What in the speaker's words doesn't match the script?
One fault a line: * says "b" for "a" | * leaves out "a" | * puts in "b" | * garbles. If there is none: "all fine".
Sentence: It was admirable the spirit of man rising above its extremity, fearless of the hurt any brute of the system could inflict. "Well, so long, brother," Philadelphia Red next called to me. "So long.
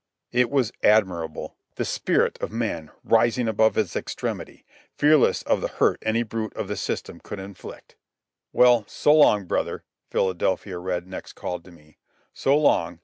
all fine